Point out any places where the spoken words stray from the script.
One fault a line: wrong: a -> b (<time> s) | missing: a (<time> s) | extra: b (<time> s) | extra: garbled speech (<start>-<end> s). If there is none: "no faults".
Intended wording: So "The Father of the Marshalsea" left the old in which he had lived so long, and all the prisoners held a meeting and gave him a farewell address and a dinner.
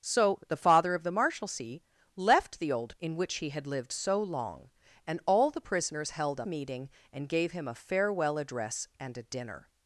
no faults